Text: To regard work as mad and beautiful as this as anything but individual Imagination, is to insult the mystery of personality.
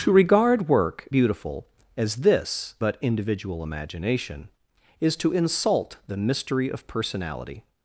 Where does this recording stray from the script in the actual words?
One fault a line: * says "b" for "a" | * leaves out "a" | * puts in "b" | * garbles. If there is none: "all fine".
* leaves out "as mad and"
* leaves out "as anything"